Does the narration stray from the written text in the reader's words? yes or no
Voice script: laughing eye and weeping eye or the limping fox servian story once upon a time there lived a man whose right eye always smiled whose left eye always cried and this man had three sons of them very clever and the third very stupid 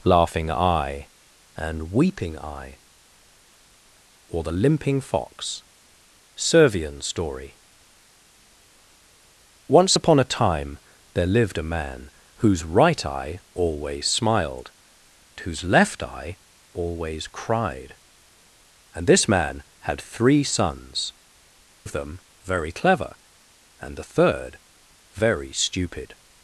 no